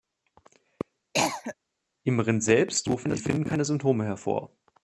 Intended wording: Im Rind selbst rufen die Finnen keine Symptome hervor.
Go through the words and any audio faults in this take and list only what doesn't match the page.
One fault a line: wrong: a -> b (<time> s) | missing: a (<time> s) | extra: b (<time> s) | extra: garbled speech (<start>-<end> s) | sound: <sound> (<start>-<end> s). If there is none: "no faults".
sound: cough (1.1-1.5 s)